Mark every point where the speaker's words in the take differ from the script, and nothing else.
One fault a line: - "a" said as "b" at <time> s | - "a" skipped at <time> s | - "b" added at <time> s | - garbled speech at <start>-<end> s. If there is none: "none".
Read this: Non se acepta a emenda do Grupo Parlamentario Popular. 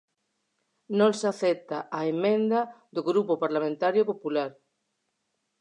none